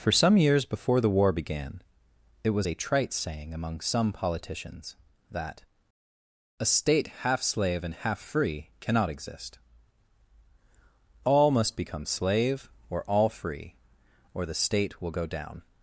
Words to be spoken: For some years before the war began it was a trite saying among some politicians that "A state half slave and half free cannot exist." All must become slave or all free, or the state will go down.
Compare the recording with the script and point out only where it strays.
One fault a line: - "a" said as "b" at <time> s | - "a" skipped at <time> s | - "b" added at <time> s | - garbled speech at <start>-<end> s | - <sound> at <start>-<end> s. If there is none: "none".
none